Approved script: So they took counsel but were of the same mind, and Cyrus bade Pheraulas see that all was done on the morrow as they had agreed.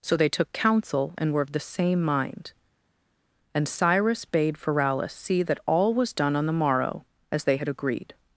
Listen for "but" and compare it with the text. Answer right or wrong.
wrong